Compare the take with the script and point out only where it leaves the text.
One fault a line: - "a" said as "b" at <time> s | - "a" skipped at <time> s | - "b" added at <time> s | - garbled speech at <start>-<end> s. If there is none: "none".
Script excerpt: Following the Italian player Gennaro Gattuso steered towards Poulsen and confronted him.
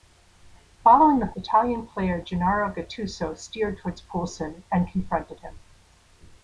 none